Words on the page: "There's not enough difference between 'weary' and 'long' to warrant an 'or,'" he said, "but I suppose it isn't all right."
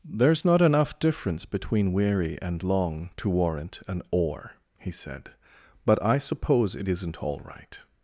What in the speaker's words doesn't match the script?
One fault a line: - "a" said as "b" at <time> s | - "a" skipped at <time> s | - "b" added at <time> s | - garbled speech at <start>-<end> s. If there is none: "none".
none